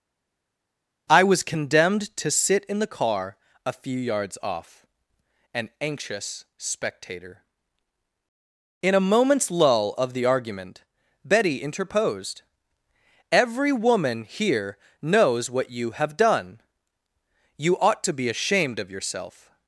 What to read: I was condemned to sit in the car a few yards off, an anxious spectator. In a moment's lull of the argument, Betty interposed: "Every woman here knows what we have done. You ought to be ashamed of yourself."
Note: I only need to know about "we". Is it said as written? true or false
false